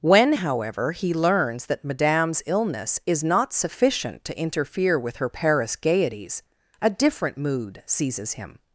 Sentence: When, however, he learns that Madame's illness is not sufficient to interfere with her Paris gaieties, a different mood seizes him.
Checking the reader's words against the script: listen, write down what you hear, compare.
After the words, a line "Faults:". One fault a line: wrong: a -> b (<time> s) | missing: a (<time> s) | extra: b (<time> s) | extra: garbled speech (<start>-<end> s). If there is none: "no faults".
When, however, he learns that Madame's illness is not sufficient to interfere with her Paris gaieties, a different mood seizes him.
Faults:
no faults